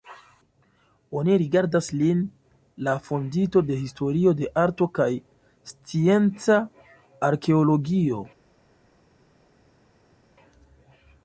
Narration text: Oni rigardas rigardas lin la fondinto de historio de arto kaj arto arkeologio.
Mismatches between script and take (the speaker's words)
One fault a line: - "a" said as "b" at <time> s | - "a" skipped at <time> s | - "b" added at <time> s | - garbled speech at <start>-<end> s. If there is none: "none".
- "rigardas" skipped at 1.9 s
- "arto" said as "scienca" at 5.7 s